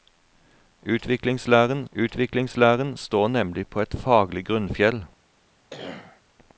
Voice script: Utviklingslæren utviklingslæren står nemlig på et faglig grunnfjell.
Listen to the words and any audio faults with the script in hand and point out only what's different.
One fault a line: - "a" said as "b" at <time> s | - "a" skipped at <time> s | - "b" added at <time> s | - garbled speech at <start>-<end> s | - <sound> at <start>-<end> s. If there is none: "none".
- cough at 5.7-6.2 s